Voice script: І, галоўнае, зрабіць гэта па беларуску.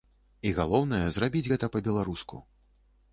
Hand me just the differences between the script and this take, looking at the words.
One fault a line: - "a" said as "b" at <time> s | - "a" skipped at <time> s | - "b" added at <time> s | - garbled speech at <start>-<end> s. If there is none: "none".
none